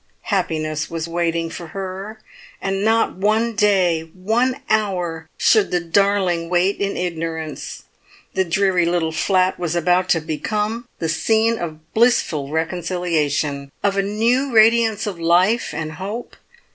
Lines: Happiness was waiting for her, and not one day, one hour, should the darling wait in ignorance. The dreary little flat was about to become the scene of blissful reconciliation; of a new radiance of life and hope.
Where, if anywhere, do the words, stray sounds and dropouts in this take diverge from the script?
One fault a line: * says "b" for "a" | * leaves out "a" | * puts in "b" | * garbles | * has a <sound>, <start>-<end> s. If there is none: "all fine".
all fine